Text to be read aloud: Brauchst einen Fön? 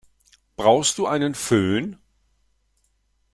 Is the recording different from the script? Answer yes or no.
yes